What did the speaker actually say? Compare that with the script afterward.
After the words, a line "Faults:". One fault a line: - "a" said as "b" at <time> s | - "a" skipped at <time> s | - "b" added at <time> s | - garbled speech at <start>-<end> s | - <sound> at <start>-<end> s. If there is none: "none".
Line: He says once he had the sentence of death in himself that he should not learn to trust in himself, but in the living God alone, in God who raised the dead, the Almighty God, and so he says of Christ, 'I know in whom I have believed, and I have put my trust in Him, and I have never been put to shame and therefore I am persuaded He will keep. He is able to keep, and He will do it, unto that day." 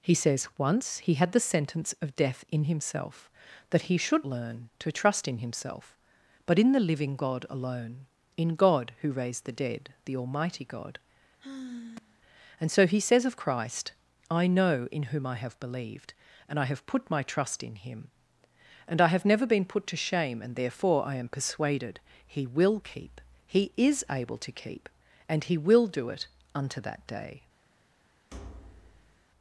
He says once he had the sentence of death in himself that he should learn to trust in himself, but in the living God alone, in God who raised the dead, the Almighty God, and so he says of Christ, 'I know in whom I have believed, and I have put my trust in Him, and I have never been put to shame and therefore I am persuaded He will keep. He is able to keep, and He will do it, unto that day."
Faults:
- "not" skipped at 4.3 s
- sigh at 11.4-12.2 s
- thud at 28.3-29.3 s